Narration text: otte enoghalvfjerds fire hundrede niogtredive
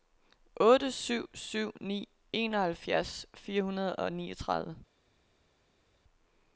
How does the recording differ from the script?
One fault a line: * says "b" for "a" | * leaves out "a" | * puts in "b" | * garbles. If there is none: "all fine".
* puts in "syv syv ni"
* puts in "og"